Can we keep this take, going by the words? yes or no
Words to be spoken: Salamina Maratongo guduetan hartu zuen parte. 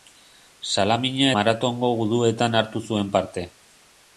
yes